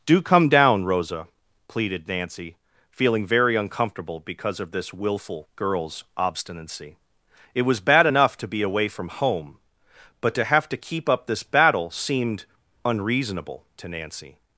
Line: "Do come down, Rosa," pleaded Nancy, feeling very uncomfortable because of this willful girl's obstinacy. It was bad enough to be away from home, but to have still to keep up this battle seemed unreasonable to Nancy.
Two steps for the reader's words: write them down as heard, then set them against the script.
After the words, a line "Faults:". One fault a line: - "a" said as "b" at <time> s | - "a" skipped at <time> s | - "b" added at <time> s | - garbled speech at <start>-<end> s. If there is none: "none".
"Do come down, Rosa," pleaded Nancy, feeling very uncomfortable because of this willful girl's obstinacy. It was bad enough to be away from home, but to have to keep up this battle seemed unreasonable to Nancy.
Faults:
- "still" skipped at 10.7 s